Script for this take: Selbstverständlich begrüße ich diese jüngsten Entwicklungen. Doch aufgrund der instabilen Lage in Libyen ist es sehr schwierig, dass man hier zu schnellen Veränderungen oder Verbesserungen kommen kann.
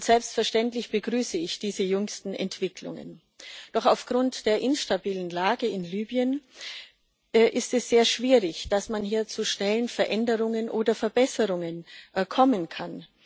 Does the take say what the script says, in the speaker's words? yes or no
yes